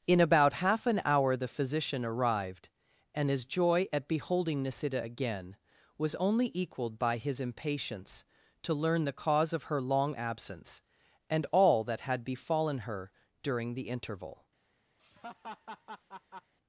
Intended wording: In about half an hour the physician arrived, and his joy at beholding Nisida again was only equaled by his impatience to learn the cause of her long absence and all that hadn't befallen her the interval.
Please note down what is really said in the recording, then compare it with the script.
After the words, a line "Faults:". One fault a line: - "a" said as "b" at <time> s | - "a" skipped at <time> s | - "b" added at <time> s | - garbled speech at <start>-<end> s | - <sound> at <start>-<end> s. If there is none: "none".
In about half an hour the physician arrived, and his joy at beholding Nisida again was only equaled by his impatience to learn the cause of her long absence and all that had befallen her during the interval.
Faults:
- "hadn't" said as "had" at 12.0 s
- "during" added at 13.4 s
- laugh at 15.0-16.5 s